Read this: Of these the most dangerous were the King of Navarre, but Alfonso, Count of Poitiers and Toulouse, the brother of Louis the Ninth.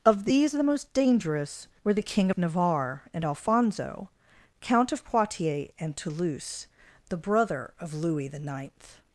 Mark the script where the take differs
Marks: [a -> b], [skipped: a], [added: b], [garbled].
Of these the most dangerous were the King of Navarre, [but -> and] Alfonso, Count of Poitiers and Toulouse, the brother of Louis the Ninth.